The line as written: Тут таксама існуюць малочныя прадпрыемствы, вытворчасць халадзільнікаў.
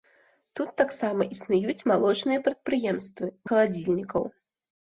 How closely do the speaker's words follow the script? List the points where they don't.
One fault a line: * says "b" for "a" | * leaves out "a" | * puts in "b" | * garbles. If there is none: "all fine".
* leaves out "вытворчасць"